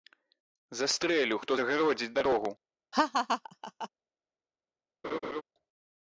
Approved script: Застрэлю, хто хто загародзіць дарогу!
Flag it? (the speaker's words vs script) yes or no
yes